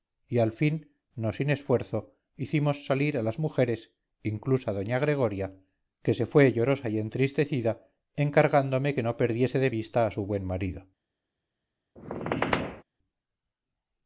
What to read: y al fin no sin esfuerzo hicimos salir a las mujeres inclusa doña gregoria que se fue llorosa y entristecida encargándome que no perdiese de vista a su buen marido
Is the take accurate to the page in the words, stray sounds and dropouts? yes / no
no